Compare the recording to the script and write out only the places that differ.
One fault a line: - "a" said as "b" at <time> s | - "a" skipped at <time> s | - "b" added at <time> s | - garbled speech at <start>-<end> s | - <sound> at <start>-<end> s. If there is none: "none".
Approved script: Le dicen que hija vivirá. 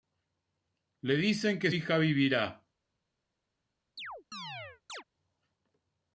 - chirp at 4.0-5.0 s